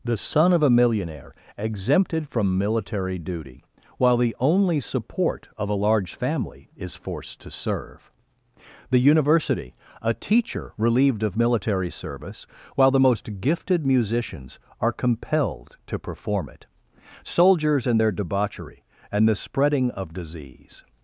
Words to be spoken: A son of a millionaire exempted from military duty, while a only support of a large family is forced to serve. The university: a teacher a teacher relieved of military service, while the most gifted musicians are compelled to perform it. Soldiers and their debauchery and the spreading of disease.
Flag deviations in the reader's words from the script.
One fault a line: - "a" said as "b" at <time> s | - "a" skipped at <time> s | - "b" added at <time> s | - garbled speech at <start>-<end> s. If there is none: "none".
- "A" said as "The" at 0.0 s
- "a" said as "the" at 4.2 s
- "a teacher" skipped at 10.7 s